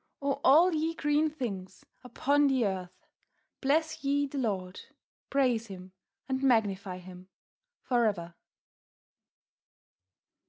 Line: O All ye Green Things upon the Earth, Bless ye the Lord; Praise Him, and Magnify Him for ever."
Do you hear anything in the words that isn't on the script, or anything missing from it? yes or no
no